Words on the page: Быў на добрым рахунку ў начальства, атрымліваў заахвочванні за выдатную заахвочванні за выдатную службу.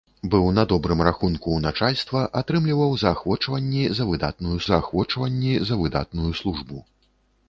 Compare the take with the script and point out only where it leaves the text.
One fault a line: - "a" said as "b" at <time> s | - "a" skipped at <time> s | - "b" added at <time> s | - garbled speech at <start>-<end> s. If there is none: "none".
none